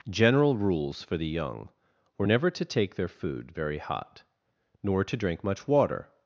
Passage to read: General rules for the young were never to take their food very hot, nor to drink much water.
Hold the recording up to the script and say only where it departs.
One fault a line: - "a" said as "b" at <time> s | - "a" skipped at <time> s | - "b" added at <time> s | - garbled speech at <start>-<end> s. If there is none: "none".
none